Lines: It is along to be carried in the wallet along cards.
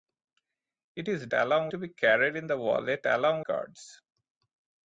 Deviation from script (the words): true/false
false